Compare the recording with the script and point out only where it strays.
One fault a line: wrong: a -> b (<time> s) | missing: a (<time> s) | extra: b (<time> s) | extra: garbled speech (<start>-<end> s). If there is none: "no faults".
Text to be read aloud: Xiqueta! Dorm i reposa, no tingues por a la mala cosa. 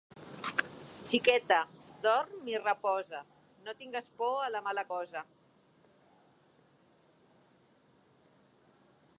no faults